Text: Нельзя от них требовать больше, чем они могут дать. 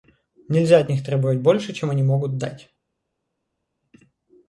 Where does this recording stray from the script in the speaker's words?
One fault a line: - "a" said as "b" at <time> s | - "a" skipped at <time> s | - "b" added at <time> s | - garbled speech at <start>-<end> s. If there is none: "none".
none